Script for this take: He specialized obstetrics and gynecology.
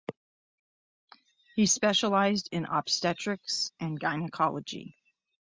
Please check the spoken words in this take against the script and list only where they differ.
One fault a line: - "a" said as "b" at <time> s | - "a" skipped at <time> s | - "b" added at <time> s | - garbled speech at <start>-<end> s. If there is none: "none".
- "in" added at 2.5 s